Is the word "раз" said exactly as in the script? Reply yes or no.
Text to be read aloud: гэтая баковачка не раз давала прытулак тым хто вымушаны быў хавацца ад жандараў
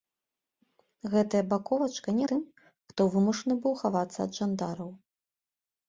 no